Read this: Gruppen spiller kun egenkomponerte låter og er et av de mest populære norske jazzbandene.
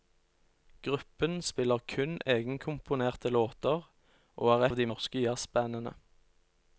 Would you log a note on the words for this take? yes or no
yes